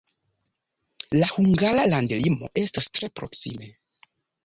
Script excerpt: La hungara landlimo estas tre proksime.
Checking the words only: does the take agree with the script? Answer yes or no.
yes